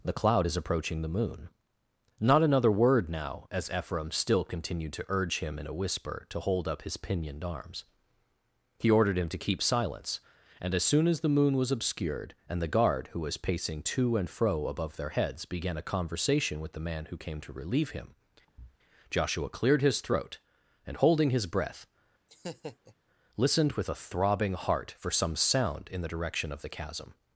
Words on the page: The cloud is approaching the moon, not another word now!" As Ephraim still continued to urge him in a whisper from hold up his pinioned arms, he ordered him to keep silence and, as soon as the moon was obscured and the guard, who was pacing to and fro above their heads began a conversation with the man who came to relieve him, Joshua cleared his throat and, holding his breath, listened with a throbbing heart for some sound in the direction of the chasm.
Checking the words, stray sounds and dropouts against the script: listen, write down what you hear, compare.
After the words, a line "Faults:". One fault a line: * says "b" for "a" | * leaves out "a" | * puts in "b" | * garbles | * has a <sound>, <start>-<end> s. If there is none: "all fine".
The cloud is approaching the moon, not another word now!" As Ephraim still continued to urge him in a whisper to hold up his pinioned arms, he ordered him to keep silence and, as soon as the moon was obscured and the guard, who was pacing to and fro above their heads began a conversation with the man who came to relieve him, Joshua cleared his throat and, holding his breath, listened with a throbbing heart for some sound in the direction of the chasm.
Faults:
* says "to" for "from"
* has a thud, 18.5-18.8 s
* has a laugh, 22.3-22.9 s